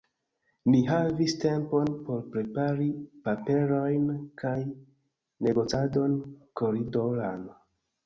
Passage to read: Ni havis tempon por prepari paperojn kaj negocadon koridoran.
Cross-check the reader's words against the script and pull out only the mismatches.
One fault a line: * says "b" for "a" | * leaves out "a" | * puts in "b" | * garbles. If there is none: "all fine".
all fine